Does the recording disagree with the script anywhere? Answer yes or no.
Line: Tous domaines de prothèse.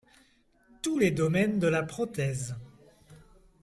yes